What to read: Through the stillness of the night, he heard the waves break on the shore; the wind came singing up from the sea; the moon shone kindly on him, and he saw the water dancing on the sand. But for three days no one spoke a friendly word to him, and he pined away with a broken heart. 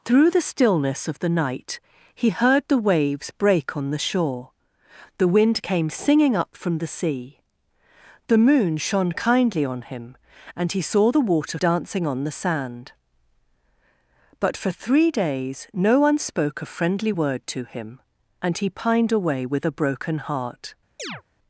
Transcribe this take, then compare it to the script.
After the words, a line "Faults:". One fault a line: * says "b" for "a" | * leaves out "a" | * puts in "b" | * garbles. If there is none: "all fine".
Through the stillness of the night, he heard the waves break on the shore; the wind came singing up from the sea; the moon shone kindly on him, and he saw the water dancing on the sand. But for three days no one spoke a friendly word to him, and he pined away with a broken heart.
Faults:
all fine